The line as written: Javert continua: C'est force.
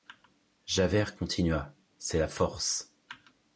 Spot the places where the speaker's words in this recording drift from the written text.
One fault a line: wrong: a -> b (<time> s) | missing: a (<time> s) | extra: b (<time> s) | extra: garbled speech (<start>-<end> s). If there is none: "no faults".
extra: la (2.2 s)